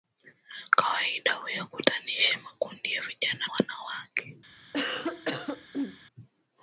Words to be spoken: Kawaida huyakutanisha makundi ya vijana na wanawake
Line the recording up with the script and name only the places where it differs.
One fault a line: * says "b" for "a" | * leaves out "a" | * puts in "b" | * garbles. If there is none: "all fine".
* leaves out "na"